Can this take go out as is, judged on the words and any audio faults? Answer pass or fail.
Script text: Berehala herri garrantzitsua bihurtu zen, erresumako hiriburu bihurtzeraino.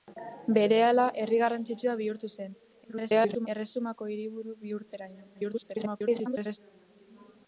fail